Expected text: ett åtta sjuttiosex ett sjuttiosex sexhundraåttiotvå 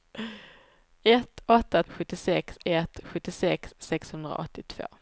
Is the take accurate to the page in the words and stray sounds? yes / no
yes